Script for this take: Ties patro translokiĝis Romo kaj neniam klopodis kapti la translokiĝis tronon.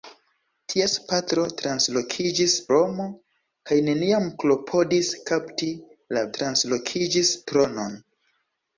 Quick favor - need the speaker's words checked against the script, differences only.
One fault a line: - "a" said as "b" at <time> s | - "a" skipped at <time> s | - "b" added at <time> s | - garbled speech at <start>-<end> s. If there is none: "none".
none